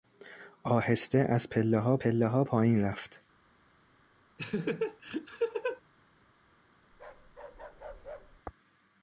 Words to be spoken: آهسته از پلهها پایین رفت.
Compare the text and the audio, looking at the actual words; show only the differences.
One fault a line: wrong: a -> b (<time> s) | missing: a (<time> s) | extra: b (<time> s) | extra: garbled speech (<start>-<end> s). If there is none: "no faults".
extra: پلهها (2.0 s)